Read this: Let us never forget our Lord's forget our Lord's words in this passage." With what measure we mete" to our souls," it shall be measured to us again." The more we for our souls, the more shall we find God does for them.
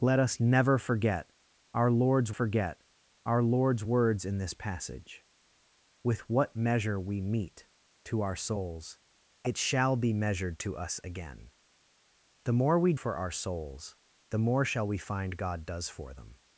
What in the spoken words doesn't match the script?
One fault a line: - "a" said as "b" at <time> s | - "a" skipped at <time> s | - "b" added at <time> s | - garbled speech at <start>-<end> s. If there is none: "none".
none